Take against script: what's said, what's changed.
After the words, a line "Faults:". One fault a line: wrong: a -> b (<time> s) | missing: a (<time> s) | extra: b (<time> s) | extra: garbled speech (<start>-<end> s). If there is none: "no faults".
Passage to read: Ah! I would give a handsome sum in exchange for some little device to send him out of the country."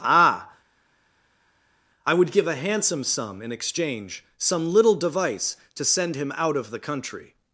Ah! I would give a handsome sum in exchange some little device to send him out of the country."
Faults:
missing: for (4.2 s)